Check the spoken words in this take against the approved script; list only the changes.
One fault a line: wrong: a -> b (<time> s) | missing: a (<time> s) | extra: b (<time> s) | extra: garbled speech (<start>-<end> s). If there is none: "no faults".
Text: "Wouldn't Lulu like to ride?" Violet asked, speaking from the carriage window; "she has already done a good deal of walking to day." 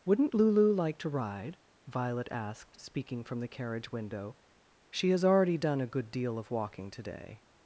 no faults